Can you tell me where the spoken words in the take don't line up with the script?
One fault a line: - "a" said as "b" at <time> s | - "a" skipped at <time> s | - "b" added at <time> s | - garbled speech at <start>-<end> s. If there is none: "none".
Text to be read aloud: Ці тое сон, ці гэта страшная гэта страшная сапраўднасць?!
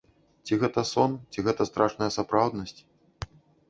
- "тое" said as "гэта" at 0.6 s
- "гэта страшная" skipped at 2.1 s